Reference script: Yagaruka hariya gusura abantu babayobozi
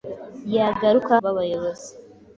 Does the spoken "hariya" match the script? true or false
false